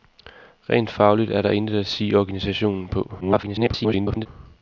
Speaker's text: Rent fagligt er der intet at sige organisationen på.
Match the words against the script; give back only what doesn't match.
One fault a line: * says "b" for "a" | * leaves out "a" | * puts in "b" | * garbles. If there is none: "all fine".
* garbles